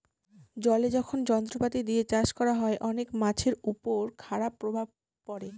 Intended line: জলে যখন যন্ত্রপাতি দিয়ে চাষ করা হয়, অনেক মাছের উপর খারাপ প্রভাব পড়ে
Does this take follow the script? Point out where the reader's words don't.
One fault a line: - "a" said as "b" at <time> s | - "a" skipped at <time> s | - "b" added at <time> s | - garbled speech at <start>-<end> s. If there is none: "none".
none